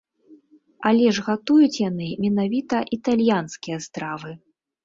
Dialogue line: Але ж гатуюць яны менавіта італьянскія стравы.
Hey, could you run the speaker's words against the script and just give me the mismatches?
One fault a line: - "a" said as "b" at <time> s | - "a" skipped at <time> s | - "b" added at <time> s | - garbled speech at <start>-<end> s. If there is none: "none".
none